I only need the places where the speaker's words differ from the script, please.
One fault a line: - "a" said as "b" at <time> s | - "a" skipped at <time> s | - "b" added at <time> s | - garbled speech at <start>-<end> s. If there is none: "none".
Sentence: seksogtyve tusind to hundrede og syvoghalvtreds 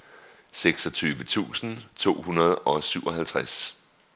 none